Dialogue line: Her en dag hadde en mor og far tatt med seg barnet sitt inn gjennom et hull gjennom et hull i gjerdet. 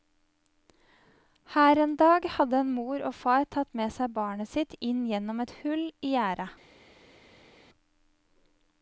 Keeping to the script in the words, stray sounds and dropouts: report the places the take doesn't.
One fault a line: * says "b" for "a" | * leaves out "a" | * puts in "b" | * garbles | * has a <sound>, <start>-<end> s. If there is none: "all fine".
* leaves out "gjennom et hull"